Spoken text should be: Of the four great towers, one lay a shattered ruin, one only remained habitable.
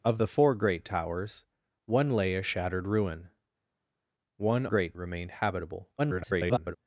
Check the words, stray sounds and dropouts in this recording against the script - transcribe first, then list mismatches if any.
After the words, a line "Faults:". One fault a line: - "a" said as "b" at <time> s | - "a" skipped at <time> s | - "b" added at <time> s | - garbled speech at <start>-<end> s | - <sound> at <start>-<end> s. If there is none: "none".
Of the four great towers, one lay a shattered ruin, one great remained habitable. [garbled]
Faults:
- "only" said as "great" at 4.6 s
- garbled speech at 6.0-6.8 s